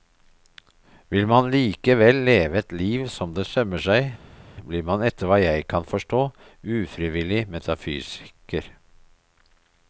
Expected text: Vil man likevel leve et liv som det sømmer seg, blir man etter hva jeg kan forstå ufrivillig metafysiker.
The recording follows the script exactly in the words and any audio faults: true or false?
true